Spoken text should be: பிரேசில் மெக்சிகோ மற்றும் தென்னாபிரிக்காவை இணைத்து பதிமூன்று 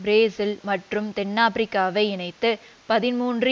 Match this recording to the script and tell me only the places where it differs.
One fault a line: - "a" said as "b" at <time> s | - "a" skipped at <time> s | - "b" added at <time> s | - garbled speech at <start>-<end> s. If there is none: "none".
- "மெக்சிகோ" skipped at 0.6 s